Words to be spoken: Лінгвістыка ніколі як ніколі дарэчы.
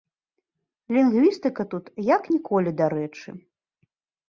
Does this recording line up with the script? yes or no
no